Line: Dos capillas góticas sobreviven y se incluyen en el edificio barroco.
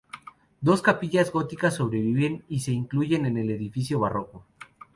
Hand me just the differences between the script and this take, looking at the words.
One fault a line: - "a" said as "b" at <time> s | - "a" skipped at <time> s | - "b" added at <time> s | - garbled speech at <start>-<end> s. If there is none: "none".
none